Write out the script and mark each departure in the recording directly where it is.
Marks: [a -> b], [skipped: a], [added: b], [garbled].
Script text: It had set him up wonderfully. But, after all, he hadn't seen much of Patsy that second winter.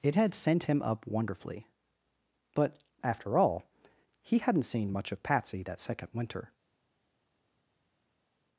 It had [set -> sent] him up wonderfully. But, after all, he hadn't seen much of Patsy that second winter.